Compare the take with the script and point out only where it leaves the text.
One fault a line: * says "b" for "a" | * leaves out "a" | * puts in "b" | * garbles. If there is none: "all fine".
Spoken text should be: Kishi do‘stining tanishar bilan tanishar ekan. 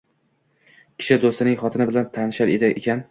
* says "xotini" for "tanishar"